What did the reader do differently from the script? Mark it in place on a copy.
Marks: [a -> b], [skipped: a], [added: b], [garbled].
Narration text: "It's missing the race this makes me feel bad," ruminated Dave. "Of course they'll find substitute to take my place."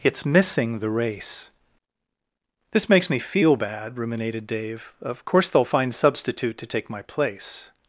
"It's missing the race this makes me feel bad," ruminated Dave. "Of course they'll find substitute to take my place."